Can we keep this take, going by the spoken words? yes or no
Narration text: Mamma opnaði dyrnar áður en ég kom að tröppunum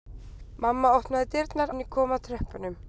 no